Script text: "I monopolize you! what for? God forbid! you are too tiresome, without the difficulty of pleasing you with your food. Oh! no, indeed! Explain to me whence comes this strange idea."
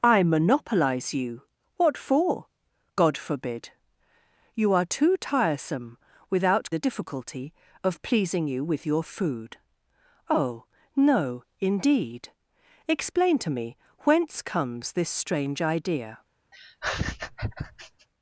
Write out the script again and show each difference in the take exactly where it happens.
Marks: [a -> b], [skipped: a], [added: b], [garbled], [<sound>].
"I monopolize you! what for? God forbid! you are too tiresome, without the difficulty of pleasing you with your food. Oh! no, indeed! Explain to me whence comes this strange idea." [laugh]